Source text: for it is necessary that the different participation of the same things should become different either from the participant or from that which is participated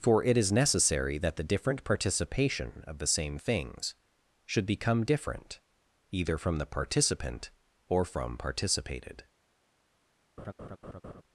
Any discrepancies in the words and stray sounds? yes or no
yes